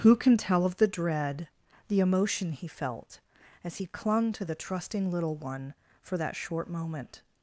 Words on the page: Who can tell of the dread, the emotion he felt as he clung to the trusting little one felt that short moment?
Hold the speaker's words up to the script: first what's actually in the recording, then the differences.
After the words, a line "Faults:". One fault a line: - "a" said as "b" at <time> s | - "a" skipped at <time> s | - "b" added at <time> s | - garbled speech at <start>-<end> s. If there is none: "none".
Who can tell of the dread, the emotion he felt as he clung to the trusting little one for that short moment?
Faults:
- "felt" said as "for" at 6.0 s